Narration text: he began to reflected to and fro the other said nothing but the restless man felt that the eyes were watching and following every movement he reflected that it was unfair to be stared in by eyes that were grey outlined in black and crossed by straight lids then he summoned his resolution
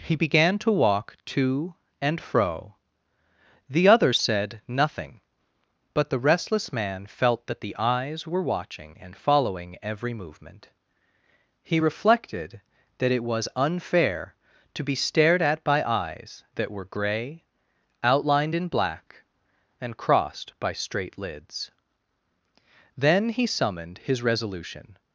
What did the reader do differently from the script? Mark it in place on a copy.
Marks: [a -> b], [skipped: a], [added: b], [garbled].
he began to [reflected -> walk] to and fro the other said nothing but the restless man felt that the eyes were watching and following every movement he reflected that it was unfair to be stared [in -> at] by eyes that were grey outlined in black and crossed by straight lids then he summoned his resolution